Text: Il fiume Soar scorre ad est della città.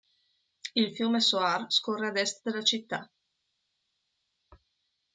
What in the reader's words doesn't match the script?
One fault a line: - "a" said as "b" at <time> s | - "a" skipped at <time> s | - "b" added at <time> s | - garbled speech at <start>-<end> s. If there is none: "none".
none